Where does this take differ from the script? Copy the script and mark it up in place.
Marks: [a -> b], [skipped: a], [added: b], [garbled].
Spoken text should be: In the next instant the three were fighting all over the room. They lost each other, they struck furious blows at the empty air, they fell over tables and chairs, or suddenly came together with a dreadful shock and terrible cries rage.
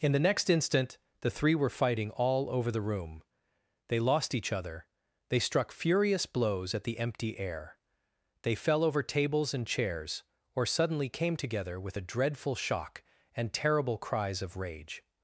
In the next instant the three were fighting all over the room. They lost each other, they struck furious blows at the empty air, they fell over tables and chairs, or suddenly came together with a dreadful shock and terrible cries [added: of] rage.